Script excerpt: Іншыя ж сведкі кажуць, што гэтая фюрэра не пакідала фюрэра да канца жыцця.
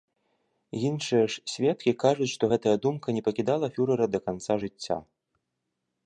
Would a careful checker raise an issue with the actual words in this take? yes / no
yes